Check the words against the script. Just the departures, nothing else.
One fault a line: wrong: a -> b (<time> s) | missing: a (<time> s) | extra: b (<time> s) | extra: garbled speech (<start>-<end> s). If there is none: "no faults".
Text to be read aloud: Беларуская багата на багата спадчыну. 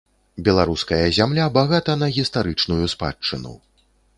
extra: зямля (1.2 s)
wrong: багата -> гістарычную (2.2 s)